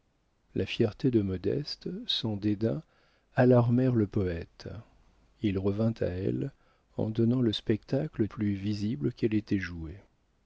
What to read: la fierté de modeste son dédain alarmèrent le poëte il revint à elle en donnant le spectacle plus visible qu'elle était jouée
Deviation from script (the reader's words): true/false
false